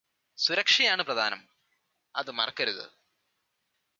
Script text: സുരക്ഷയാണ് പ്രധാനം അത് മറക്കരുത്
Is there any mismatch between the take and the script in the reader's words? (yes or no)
no